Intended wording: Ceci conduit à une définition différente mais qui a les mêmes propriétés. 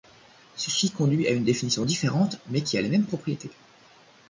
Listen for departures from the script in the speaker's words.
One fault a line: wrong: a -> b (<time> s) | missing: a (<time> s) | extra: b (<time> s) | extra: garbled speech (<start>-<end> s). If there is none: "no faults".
no faults